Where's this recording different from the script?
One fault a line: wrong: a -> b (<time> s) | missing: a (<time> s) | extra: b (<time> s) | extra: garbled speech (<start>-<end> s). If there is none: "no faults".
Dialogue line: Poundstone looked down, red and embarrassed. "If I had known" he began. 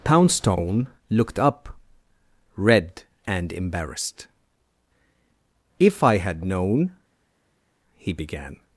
wrong: down -> up (1.4 s)